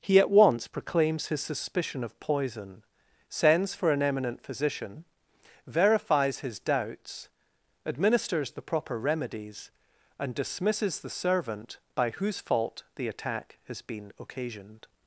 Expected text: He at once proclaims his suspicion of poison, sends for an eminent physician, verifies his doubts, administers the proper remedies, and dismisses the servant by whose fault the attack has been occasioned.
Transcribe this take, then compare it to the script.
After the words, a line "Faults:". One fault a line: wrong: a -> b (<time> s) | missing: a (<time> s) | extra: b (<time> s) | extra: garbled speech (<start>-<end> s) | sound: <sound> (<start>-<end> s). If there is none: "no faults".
He at once proclaims his suspicion of poison, sends for an eminent physician, verifies his doubts, administers the proper remedies, and dismisses the servant by whose fault the attack has been occasioned.
Faults:
no faults